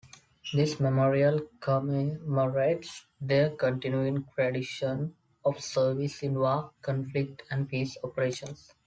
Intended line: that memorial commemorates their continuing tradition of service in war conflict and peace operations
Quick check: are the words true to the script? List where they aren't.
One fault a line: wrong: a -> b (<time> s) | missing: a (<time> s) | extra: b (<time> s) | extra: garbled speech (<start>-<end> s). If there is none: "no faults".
wrong: that -> this (0.5 s)